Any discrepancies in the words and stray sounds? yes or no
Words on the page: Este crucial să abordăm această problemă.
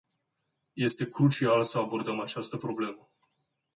no